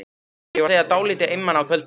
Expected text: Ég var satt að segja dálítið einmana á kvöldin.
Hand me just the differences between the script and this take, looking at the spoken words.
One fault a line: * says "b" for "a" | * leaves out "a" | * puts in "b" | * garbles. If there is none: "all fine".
* leaves out "satt að"